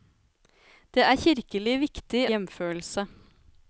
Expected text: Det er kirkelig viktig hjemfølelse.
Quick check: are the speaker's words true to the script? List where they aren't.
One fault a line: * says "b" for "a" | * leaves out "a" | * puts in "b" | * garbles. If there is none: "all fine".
all fine